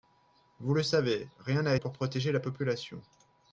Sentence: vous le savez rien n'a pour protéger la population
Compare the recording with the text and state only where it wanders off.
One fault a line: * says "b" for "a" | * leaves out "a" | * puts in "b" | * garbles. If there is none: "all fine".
all fine